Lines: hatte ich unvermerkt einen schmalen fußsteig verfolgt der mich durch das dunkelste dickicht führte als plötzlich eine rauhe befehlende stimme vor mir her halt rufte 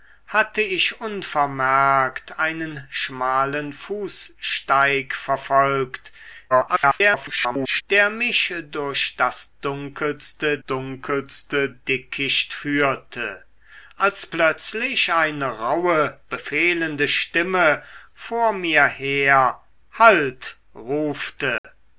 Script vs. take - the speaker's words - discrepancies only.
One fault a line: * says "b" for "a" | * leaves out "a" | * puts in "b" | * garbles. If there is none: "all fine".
* garbles
* puts in "dunkelste"